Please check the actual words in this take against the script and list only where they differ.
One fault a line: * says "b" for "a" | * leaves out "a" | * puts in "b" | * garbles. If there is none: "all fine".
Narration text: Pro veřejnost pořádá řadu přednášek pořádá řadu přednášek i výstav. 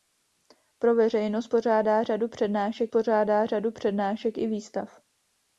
all fine